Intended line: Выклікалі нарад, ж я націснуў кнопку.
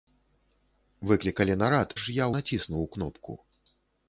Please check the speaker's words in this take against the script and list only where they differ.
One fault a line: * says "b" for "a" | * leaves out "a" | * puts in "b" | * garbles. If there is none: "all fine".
all fine